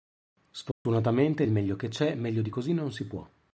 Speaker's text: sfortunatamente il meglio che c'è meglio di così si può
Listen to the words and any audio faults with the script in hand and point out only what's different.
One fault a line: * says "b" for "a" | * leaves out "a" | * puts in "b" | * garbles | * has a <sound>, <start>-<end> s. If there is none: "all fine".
* has a dropout, 0.7-0.9 s
* puts in "non"